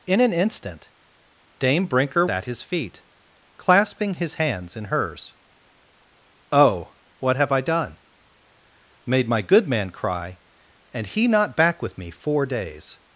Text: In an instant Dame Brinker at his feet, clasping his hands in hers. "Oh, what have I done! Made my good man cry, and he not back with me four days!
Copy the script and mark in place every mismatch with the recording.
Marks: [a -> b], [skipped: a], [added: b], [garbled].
In an instant Dame Brinker at his feet, clasping his hands in hers. "Oh, what have I done! Made my good man cry, and he not back with me four days!